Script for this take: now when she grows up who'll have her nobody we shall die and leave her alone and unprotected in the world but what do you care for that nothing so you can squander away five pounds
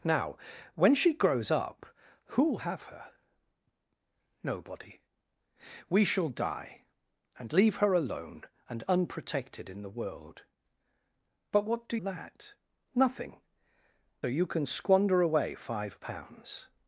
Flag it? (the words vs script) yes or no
yes